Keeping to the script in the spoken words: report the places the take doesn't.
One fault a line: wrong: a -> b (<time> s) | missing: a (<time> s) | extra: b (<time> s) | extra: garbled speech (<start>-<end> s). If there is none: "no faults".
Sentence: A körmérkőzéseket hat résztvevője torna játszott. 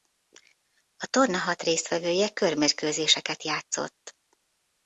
wrong: körmérkőzéseket -> torna (1.1 s)
wrong: torna -> körmérkőzéseket (2.3 s)